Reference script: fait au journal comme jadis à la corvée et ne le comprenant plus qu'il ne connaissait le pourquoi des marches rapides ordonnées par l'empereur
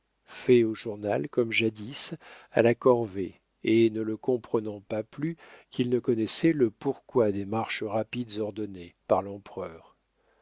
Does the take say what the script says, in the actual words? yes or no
no